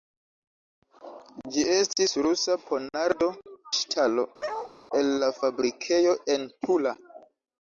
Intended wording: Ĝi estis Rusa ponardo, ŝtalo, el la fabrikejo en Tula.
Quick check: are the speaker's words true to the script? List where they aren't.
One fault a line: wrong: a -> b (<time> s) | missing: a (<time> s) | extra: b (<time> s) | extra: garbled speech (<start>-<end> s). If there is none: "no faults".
no faults